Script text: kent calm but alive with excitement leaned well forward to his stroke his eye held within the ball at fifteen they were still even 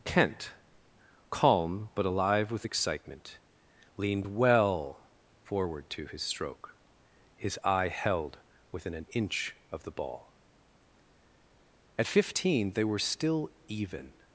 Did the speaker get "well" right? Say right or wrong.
right